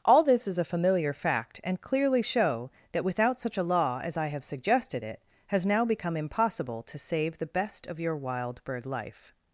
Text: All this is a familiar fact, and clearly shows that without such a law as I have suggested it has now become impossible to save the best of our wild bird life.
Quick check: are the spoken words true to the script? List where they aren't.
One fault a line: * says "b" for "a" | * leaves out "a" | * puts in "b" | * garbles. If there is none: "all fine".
* says "show" for "shows"
* says "your" for "our"